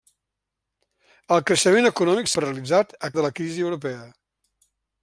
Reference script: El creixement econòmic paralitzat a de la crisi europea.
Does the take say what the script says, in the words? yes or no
yes